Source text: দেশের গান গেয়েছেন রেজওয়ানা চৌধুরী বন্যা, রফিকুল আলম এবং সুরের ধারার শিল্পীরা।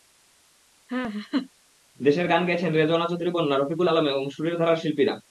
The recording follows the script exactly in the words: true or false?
true